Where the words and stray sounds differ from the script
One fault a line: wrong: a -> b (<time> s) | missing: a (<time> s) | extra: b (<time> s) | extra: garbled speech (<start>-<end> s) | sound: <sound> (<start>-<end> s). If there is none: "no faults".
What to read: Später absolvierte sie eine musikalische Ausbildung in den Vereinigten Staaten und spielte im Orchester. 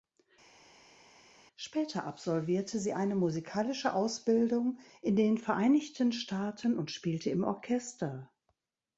no faults